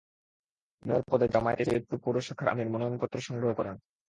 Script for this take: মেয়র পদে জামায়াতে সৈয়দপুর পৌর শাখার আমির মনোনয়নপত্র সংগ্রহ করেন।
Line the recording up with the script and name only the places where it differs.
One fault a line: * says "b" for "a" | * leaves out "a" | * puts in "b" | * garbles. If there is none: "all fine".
all fine